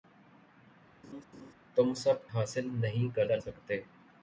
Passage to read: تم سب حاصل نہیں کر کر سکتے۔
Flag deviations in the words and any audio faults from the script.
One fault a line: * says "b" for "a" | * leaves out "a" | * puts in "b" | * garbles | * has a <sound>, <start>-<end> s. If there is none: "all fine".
* has a laugh, 1.0-1.5 s